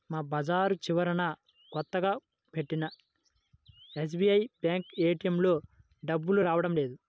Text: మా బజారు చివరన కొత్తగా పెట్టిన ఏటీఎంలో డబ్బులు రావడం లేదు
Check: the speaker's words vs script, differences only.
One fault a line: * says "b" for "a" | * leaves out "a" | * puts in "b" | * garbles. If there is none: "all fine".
* puts in "ఎస్బీఐ బ్యేంకు"